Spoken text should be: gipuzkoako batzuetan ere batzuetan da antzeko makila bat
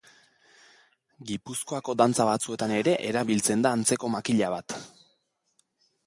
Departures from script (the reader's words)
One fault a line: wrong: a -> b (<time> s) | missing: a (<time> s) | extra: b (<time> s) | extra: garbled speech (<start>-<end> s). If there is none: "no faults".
extra: dantza (2.0 s)
wrong: batzuetan -> erabiltzen (3.1 s)